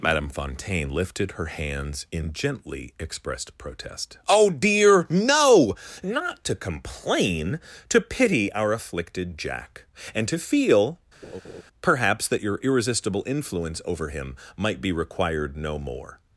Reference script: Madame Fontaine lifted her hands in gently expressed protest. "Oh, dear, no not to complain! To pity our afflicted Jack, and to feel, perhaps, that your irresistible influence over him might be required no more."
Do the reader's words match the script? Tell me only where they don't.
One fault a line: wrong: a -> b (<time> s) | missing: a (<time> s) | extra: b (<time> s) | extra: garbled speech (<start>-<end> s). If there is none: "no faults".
no faults